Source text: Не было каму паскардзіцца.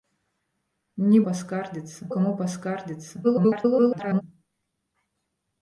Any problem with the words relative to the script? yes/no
yes